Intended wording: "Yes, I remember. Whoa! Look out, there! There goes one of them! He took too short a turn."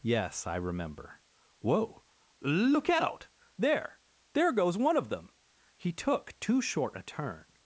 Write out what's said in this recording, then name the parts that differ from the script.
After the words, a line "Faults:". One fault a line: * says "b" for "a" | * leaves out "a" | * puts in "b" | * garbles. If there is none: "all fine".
"Yes, I remember. Whoa! Look out, there! There goes one of them! He took too short a turn."
Faults:
all fine